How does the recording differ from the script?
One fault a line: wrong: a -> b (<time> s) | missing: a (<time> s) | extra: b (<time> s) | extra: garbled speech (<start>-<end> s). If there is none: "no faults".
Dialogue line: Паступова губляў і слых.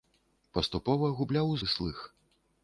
no faults